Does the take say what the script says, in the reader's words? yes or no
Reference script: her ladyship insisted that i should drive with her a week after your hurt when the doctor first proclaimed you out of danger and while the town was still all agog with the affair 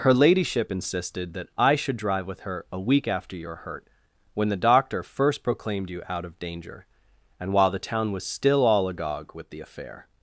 yes